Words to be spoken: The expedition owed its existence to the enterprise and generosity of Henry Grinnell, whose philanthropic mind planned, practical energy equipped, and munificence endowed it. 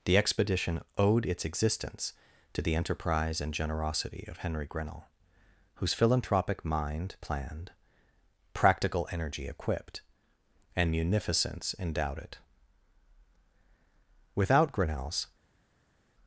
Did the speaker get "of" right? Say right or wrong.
right